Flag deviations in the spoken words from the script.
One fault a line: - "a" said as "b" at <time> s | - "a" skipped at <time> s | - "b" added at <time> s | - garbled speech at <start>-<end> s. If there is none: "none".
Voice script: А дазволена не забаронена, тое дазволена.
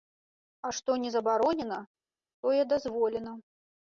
- "дазволена" said as "што" at 0.8 s